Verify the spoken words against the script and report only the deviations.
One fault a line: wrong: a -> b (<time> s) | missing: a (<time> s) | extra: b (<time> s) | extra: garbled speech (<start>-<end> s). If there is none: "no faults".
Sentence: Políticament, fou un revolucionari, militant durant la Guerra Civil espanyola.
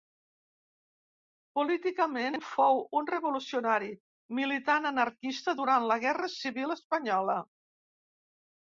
extra: anarquista (5.0 s)